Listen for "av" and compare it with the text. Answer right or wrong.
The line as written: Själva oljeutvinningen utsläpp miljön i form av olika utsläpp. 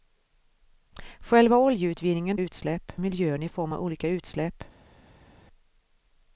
right